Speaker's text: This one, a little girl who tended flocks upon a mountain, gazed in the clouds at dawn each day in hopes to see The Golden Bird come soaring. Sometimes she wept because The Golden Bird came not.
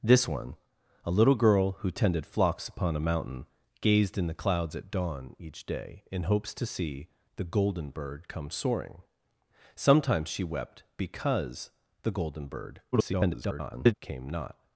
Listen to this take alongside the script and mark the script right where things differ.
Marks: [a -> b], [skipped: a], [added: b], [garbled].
This one, a little girl who tended flocks upon a mountain, gazed in the clouds at dawn each day in hopes to see The Golden Bird come soaring. Sometimes she wept because The Golden Bird [garbled] came not.